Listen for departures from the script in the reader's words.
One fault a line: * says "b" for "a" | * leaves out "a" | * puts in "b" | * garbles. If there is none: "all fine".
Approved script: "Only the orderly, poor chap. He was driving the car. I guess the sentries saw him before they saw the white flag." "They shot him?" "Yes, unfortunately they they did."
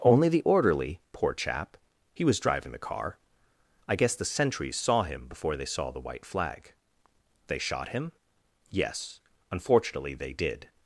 * leaves out "they"